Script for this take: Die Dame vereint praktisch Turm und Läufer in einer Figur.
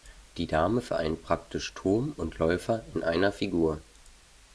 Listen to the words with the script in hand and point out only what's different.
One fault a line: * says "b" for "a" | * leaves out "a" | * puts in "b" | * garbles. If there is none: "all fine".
all fine